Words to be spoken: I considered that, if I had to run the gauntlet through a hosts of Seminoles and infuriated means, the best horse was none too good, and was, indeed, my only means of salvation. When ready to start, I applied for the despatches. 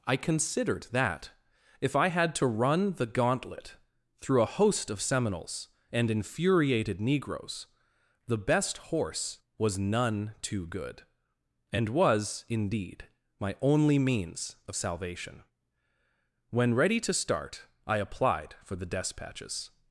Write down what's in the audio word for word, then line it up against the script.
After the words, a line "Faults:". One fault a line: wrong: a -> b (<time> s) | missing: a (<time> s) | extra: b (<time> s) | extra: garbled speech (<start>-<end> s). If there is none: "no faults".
I considered that, if I had to run the gauntlet through a host of Seminoles and infuriated negroes, the best horse was none too good, and was, indeed, my only means of salvation. When ready to start, I applied for the despatches.
Faults:
wrong: hosts -> host (4.5 s)
wrong: means -> negroes (7.0 s)